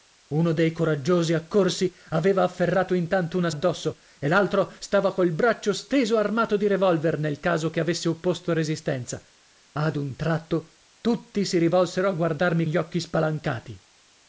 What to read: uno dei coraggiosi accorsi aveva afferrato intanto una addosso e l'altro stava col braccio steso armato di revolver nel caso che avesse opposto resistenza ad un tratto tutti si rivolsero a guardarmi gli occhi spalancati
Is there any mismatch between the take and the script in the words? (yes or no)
no